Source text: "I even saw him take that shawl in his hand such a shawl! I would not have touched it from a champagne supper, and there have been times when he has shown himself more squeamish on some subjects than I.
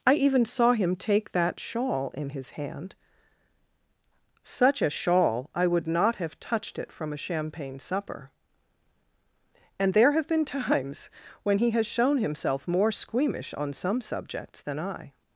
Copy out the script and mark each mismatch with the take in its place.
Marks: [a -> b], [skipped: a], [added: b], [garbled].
"I even saw him take that shawl in his hand such a shawl! I would not have touched it from a champagne supper, and there have been times when he has shown himself more squeamish on some subjects than I.